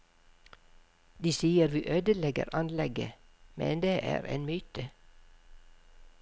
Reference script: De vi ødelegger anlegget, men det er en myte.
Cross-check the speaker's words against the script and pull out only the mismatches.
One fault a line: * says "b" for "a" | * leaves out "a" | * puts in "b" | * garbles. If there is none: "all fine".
* puts in "sier"